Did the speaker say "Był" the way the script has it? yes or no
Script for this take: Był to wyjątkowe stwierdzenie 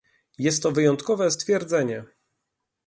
no